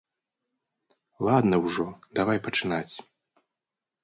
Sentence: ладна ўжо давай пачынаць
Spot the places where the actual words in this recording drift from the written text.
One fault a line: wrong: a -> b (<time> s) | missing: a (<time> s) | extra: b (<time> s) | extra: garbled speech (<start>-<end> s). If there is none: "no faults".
no faults